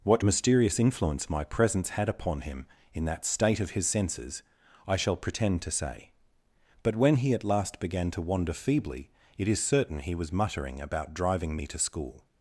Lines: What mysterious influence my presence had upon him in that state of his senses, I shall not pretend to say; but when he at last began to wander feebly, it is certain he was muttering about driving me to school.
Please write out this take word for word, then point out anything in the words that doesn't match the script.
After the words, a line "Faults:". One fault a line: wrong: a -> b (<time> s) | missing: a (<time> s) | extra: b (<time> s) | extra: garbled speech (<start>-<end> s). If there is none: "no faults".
What mysterious influence my presence had upon him in that state of his senses, I shall pretend to say; but when he at last began to wander feebly, it is certain he was muttering about driving me to school.
Faults:
missing: not (5.2 s)